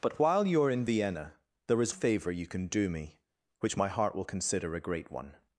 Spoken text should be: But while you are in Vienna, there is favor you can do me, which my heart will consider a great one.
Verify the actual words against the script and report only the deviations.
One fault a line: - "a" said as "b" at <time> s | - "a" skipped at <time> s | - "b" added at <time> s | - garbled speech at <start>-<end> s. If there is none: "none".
none